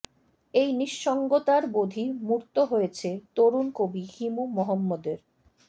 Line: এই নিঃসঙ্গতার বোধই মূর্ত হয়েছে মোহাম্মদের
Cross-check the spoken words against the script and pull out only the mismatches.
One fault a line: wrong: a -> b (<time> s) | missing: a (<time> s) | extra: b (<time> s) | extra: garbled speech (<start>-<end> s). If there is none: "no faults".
extra: তরুণ কবি হিমু (3.4 s)